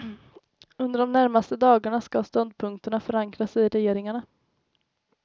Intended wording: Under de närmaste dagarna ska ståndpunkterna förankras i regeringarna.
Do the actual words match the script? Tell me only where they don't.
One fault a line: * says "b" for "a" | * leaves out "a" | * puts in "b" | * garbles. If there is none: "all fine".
all fine